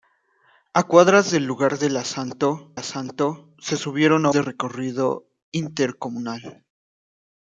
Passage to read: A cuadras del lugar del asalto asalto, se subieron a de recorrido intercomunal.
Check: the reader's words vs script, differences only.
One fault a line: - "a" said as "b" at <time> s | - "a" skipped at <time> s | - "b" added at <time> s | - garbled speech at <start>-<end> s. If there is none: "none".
none